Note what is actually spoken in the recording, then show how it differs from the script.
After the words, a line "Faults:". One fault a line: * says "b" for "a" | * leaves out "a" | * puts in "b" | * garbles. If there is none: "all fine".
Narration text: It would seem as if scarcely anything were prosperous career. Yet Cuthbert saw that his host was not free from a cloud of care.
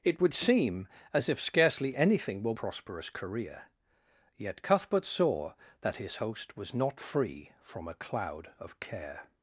It would seem as if scarcely anything were prosperous career. Yet Cuthbert saw that his host was not free from a cloud of care.
Faults:
all fine